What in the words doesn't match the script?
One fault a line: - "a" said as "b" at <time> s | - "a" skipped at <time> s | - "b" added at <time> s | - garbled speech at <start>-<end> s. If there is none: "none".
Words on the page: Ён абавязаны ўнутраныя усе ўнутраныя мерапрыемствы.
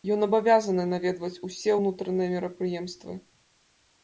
- "ўнутраныя" said as "наведваць" at 0.9 s